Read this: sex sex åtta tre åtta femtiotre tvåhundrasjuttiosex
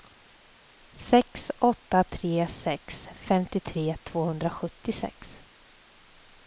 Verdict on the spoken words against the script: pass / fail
fail